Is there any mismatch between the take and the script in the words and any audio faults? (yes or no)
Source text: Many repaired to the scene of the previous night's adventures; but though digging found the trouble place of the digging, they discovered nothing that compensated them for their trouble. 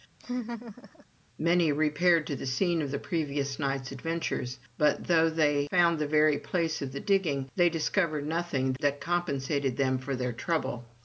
yes